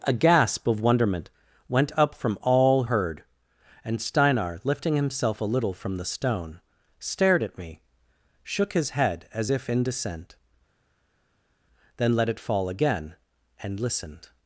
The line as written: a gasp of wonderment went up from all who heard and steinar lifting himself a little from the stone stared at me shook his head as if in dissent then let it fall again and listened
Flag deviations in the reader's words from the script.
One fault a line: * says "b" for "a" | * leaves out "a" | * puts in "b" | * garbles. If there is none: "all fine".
* leaves out "who"